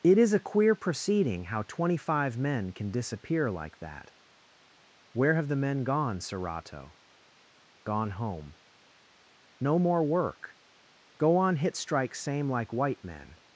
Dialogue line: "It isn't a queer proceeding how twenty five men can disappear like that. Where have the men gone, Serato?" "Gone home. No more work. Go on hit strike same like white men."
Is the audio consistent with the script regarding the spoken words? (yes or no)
no